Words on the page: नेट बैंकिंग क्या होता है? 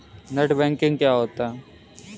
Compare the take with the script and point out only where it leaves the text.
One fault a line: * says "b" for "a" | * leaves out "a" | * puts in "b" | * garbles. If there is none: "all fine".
all fine